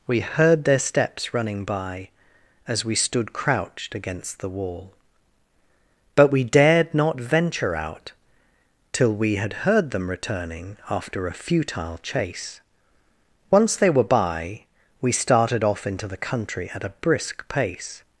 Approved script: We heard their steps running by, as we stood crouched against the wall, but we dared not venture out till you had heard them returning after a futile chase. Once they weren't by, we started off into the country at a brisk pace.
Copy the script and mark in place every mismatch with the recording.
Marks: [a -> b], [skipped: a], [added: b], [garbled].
We heard their steps running by, as we stood crouched against the wall, but we dared not venture out till [you -> we] had heard them returning after a futile chase. Once they [weren't -> were] by, we started off into the country at a brisk pace.